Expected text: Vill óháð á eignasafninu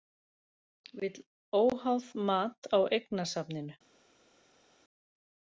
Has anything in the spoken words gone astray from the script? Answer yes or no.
yes